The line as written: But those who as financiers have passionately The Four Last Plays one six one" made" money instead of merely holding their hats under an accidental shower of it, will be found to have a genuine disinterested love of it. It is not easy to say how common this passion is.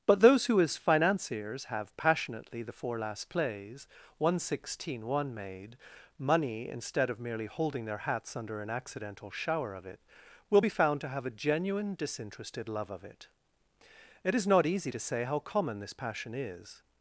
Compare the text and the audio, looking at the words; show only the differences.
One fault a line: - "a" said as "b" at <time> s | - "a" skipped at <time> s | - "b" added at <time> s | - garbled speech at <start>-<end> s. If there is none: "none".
- "six" said as "sixteen" at 4.4 s